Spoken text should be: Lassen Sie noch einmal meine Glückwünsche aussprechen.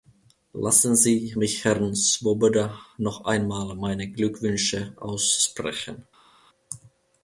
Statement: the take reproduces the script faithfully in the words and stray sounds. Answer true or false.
false